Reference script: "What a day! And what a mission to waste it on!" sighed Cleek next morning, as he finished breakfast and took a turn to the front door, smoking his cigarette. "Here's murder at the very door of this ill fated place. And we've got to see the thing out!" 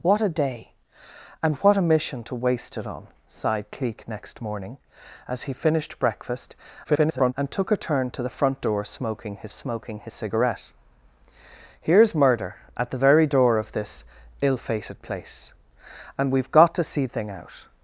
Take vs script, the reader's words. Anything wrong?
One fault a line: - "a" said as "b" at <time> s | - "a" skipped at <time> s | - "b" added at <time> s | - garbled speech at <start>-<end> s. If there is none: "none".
- garbled speech at 6.8-7.3 s
- "smoking his" added at 9.5 s
- "the" skipped at 17.1 s